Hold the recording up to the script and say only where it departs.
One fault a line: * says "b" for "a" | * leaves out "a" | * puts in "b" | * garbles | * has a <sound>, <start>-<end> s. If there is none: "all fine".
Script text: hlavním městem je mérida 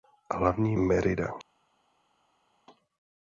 * leaves out "městem je"